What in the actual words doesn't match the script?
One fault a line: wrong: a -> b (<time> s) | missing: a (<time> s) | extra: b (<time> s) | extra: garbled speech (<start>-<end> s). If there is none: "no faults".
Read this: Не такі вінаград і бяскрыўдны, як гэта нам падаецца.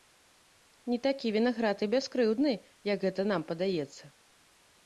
no faults